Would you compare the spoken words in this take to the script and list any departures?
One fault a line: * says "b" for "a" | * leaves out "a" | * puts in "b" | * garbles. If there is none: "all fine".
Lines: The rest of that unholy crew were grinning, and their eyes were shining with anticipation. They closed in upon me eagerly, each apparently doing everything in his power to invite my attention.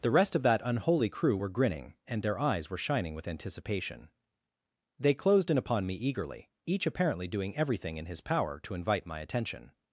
all fine